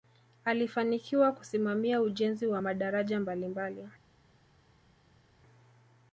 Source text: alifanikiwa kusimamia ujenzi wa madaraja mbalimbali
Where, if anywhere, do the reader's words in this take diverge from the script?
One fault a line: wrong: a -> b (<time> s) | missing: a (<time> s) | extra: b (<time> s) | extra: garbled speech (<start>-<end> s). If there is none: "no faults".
no faults